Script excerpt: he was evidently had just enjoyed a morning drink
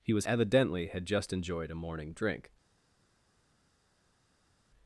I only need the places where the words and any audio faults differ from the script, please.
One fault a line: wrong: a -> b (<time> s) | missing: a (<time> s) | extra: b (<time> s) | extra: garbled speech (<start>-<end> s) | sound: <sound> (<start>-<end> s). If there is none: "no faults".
no faults